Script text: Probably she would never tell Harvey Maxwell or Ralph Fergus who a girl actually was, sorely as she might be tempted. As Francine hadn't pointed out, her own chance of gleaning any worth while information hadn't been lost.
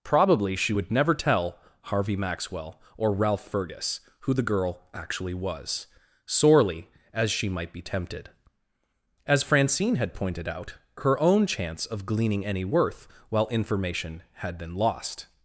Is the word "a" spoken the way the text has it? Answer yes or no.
no